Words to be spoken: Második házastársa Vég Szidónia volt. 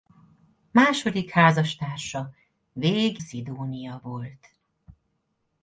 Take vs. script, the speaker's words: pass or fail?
pass